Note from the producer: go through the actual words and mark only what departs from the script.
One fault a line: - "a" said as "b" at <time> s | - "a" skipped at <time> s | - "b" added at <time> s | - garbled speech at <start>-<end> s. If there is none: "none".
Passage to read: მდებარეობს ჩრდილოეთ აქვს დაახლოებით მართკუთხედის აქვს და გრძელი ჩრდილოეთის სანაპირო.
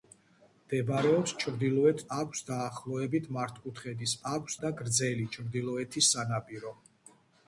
none